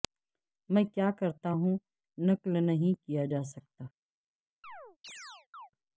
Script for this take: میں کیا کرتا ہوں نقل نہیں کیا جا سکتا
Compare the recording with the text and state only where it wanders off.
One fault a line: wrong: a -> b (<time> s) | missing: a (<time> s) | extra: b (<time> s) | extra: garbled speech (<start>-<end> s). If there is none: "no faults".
no faults